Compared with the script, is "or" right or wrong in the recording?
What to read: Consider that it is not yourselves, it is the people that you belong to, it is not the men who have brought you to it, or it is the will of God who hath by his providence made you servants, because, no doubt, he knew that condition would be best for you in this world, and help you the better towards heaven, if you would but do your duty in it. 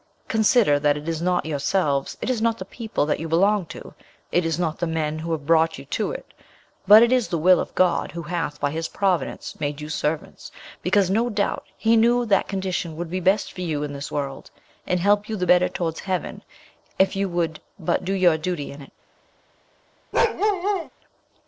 wrong